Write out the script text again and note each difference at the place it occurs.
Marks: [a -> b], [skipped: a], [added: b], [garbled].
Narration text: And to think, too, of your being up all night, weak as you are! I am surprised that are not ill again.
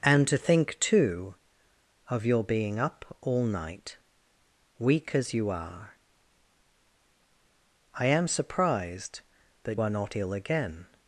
And to think, too, of your being up all night, weak as you are! I am surprised that are not ill again.